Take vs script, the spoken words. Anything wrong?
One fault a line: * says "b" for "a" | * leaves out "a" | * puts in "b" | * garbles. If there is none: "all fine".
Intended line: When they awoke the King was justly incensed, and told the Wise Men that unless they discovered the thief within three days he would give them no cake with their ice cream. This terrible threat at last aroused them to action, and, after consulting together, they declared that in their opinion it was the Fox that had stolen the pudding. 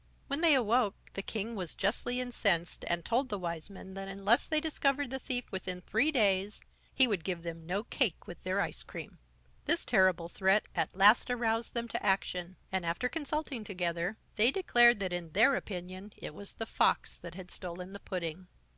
all fine